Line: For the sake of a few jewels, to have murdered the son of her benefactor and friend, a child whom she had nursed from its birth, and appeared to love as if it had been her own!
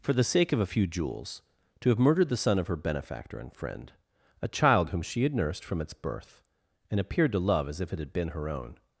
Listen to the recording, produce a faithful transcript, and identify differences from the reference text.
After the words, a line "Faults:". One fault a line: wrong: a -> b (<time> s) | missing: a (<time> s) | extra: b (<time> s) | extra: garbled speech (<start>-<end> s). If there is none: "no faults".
For the sake of a few jewels, to have murdered the son of her benefactor and friend, a child whom she had nursed from its birth, and appeared to love as if it had been her own!
Faults:
no faults